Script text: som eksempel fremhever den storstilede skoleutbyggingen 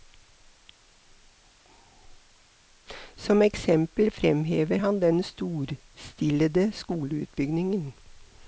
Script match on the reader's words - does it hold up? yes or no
no